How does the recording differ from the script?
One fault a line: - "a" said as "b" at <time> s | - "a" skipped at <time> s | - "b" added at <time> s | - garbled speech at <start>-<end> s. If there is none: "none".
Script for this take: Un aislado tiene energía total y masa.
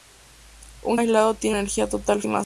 none